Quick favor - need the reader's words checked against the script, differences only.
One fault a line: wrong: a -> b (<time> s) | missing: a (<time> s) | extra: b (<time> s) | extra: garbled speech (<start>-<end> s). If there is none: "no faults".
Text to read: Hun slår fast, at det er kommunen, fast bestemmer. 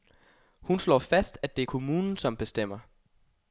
wrong: fast -> som (2.2 s)